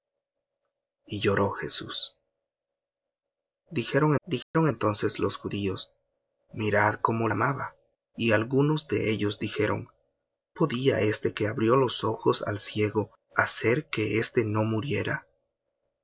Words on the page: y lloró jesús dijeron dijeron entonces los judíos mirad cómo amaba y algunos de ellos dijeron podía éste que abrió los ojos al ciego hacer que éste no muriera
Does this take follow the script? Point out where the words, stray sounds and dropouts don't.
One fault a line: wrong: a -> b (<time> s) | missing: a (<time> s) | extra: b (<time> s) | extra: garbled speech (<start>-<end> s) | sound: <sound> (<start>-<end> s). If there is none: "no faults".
sound: dropout (4.4-4.5 s)